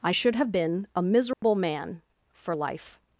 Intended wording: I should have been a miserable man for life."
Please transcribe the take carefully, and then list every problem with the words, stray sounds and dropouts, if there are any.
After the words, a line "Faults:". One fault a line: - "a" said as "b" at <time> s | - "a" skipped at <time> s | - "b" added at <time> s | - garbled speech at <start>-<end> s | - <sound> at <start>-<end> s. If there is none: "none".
I should have been a miserable man for life."
Faults:
- dropout at 1.3-1.4 s